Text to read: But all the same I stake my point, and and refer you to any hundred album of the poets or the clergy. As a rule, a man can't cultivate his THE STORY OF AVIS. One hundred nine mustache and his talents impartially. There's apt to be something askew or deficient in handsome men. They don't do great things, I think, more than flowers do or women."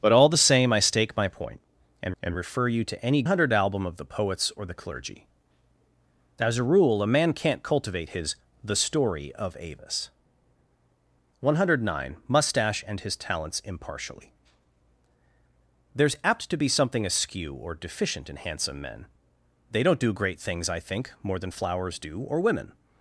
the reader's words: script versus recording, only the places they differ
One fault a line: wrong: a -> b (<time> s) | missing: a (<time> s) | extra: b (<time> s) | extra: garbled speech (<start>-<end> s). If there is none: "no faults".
no faults